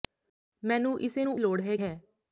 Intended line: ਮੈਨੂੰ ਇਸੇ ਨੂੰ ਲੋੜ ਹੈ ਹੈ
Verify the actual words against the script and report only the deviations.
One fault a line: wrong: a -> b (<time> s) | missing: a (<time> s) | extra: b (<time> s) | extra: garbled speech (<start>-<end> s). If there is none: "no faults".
no faults